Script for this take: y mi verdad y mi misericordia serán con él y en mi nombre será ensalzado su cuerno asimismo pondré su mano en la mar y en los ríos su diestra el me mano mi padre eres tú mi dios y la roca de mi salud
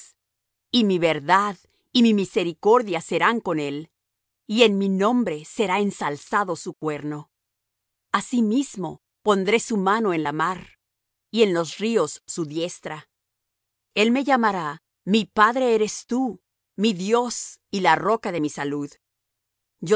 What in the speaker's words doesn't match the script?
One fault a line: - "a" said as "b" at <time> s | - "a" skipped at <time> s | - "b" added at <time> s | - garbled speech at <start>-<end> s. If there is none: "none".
- "mano" said as "llamará" at 14.2 s